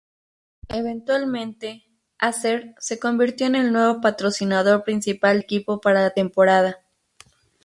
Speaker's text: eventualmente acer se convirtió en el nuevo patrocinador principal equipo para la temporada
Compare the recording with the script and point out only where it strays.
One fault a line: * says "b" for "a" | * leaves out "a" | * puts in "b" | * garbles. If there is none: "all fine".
all fine